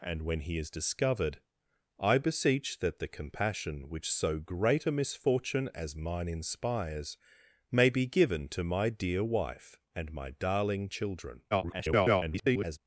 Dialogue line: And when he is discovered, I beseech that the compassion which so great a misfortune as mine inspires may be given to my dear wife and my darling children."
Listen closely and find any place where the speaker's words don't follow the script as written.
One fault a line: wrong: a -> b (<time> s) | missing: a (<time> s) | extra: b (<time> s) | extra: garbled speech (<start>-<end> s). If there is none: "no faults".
extra: garbled speech (11.5-12.8 s)